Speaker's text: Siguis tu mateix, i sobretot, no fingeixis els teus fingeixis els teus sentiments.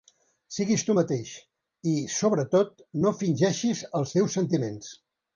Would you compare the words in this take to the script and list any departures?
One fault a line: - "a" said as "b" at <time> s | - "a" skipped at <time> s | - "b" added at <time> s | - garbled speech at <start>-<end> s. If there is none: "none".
- "fingeixis els teus" skipped at 4.4 s